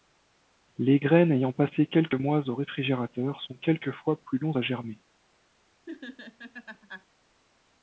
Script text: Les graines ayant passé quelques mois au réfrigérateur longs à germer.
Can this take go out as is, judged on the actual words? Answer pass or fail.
fail